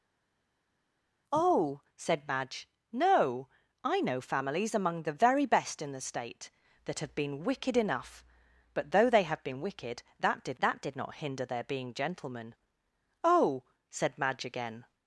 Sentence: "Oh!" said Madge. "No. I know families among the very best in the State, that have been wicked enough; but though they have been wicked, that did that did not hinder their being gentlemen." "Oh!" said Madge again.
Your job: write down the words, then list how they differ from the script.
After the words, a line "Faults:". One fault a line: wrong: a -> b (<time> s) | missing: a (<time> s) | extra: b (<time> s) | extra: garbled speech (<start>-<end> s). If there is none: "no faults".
"Oh!" said Madge. "No. I know families among the very best in the State, that have been wicked enough; but though they have been wicked, that did that did not hinder their being gentlemen." "Oh!" said Madge again.
Faults:
no faults